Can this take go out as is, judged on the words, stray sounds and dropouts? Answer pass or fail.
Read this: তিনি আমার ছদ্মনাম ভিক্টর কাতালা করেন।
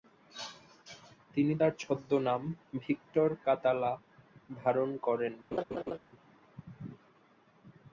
fail